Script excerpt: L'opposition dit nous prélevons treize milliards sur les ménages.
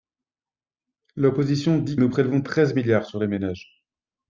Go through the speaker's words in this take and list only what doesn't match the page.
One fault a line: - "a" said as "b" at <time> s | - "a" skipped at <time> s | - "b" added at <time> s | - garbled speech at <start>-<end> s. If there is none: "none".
none